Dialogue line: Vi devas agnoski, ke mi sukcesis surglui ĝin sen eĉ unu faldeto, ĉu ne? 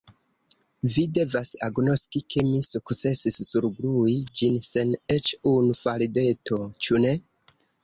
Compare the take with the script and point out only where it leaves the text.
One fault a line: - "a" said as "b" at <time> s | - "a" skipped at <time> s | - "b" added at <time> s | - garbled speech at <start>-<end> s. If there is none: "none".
none